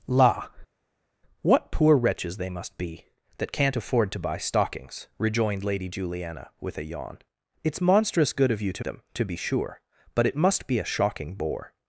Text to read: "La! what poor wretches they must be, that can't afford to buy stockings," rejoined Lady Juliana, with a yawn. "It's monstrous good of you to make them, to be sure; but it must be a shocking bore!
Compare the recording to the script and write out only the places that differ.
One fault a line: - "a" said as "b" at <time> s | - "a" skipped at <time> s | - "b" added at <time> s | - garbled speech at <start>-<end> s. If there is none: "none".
- "make" skipped at 8.8 s